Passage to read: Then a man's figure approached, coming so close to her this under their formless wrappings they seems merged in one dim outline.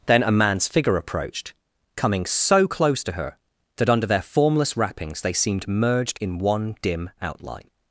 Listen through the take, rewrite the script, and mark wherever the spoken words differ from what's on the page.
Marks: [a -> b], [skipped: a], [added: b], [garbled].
Then a man's figure approached, coming so close to her [this -> that] under their formless wrappings they [seems -> seemed] merged in one dim outline.